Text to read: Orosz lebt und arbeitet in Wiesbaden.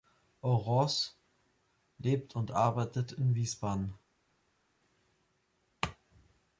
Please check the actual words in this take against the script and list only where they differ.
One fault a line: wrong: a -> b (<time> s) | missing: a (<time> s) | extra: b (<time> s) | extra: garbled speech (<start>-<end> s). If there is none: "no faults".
no faults